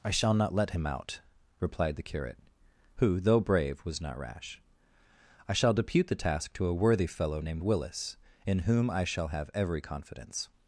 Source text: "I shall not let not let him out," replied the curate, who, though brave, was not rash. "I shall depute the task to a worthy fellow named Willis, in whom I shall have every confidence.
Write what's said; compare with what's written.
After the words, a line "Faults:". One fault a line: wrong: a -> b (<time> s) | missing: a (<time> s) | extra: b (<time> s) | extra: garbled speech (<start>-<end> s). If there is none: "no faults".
"I shall not let him out," replied the curate, who, though brave, was not rash. "I shall depute the task to a worthy fellow named Willis, in whom I shall have every confidence.
Faults:
missing: not let (0.7 s)